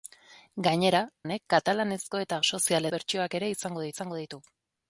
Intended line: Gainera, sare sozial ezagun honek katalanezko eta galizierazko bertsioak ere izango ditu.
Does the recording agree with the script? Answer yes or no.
no